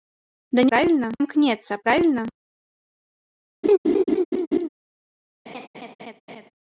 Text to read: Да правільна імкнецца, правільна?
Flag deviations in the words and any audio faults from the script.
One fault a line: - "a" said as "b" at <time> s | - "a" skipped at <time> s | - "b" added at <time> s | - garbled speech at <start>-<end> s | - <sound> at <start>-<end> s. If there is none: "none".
- laugh at 3.6-4.7 s
- laugh at 5.5-6.5 s